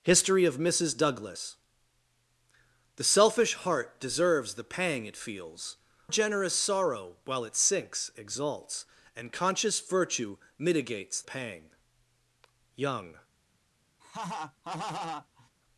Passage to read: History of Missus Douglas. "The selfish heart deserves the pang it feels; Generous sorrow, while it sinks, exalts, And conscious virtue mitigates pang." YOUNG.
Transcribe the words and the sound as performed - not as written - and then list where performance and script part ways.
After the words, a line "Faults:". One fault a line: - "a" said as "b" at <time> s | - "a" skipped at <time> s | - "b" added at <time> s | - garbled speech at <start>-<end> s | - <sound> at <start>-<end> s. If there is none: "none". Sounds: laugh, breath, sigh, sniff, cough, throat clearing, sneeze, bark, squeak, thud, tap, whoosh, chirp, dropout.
History of Missus Douglas. "The selfish heart deserves the pang it feels; Generous sorrow, while it sinks, exalts, And conscious virtue mitigates pang." YOUNG.
Faults:
- laugh at 14.0-15.5 s